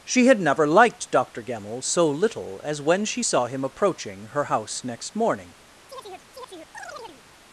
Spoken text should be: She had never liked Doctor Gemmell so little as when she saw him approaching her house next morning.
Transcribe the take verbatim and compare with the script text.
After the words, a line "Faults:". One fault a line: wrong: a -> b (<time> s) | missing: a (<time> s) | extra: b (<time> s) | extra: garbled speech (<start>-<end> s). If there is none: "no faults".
She had never liked Doctor Gemmell so little as when she saw him approaching her house next morning.
Faults:
no faults